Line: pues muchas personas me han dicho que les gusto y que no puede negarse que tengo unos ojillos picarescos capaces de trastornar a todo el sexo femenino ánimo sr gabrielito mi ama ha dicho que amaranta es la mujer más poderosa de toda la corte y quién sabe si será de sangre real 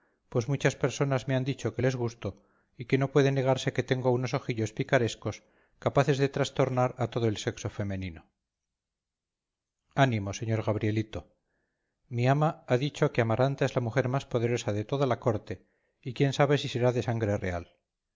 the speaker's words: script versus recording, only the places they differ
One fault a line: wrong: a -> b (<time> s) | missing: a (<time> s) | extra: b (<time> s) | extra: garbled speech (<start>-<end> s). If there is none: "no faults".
no faults